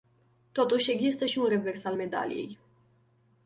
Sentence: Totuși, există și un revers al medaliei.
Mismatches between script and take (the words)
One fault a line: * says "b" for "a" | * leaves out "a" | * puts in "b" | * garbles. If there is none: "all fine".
all fine